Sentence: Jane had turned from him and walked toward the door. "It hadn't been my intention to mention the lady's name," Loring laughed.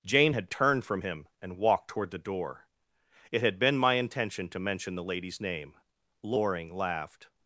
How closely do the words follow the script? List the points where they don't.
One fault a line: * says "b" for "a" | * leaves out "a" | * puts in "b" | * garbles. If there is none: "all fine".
* says "had" for "hadn't"